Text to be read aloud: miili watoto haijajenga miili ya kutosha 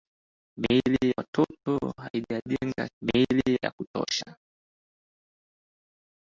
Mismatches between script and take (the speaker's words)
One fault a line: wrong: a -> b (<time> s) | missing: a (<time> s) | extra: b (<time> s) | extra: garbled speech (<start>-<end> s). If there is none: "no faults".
no faults